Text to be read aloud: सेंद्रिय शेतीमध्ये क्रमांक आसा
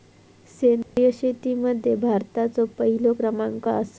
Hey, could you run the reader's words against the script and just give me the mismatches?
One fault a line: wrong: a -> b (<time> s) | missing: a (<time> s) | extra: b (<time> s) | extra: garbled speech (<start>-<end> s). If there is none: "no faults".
extra: भारताचो पहिलो (2.0 s)